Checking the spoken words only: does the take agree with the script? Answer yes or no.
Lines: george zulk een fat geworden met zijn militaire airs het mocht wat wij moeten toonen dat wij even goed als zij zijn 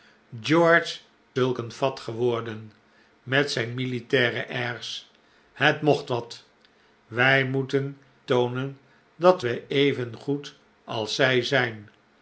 yes